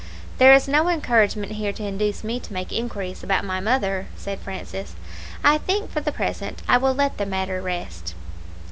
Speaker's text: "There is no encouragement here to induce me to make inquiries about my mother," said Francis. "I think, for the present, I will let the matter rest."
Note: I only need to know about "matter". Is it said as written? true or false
true